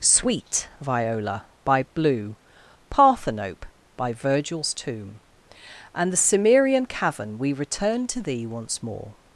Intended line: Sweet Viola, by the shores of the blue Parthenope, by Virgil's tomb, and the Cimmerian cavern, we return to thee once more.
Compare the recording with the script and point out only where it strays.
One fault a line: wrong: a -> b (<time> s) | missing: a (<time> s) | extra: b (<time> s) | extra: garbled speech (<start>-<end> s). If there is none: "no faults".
missing: the shores of the (1.9 s)